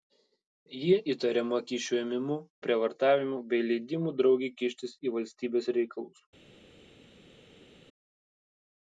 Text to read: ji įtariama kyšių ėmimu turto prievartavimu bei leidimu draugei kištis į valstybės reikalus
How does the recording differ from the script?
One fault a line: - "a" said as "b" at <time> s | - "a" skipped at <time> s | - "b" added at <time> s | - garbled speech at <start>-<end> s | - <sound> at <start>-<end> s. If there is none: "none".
- "turto" skipped at 2.4 s